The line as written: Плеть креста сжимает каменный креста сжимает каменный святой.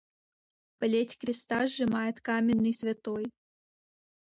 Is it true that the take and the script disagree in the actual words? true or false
true